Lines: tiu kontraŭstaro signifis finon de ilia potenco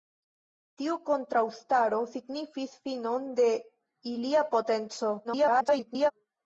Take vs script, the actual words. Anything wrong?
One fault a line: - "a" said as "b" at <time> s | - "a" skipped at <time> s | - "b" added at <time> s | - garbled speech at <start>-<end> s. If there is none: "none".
- garbled speech at 5.2-6.1 s